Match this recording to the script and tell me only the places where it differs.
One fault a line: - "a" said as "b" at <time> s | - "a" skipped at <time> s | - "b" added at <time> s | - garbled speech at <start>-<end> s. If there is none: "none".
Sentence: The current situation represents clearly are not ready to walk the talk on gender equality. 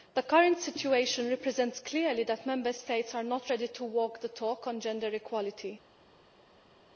- "that Member States" added at 2.2 s